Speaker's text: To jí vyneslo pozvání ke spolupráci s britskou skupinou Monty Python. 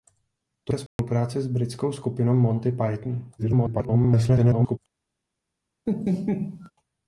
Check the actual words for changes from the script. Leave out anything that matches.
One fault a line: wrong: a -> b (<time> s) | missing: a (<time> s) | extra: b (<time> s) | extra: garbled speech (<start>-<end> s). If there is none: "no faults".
missing: jí vyneslo pozvání (0.7 s)
extra: garbled speech (3.4-4.8 s)